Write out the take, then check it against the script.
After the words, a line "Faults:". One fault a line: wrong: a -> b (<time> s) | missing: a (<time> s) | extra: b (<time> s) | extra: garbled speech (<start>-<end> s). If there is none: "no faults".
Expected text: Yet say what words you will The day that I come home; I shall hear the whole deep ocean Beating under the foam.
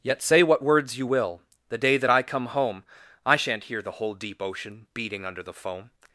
Yet say what words you will The day that I come home; I shan't hear the whole deep ocean Beating under the foam.
Faults:
wrong: shall -> shan't (3.4 s)